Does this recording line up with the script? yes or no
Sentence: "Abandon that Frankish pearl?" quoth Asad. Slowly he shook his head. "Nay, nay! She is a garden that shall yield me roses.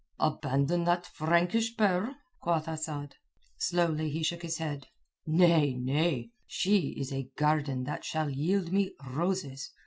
yes